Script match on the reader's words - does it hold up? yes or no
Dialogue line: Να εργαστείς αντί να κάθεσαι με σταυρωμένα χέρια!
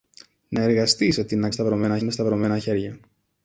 no